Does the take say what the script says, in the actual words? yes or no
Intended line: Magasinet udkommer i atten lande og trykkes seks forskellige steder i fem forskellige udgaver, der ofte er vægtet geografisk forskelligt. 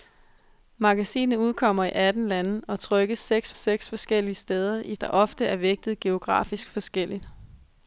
no